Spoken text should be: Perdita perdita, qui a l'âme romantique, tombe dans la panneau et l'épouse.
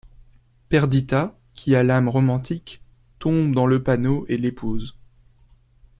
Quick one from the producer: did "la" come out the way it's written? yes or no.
no